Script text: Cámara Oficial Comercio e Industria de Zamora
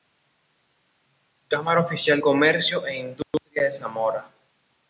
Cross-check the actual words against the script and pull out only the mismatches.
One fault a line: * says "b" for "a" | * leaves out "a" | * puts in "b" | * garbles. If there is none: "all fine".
all fine